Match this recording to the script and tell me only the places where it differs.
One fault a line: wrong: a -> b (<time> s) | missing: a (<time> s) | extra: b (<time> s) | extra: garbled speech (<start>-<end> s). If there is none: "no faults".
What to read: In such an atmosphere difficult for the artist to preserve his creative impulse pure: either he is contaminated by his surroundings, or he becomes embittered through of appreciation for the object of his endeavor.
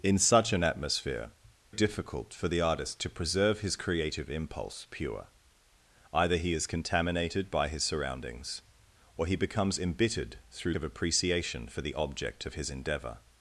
no faults